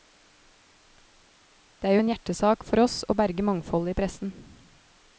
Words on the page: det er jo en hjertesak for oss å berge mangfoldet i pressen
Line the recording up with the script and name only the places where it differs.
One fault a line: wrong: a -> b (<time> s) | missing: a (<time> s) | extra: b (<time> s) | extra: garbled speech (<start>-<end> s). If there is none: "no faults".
no faults